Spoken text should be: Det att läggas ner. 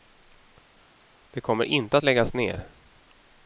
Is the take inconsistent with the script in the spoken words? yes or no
yes